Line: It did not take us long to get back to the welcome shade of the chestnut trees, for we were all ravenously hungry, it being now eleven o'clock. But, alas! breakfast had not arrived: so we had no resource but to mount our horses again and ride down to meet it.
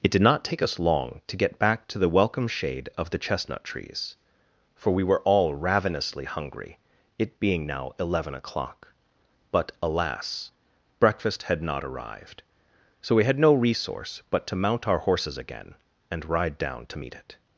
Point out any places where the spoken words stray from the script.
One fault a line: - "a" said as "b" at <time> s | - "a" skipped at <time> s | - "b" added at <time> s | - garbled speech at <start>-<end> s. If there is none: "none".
none